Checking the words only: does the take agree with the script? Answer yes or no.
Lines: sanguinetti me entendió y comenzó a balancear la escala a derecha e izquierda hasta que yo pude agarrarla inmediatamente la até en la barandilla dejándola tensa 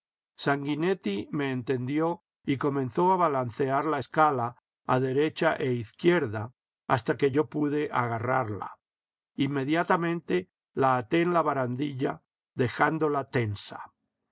yes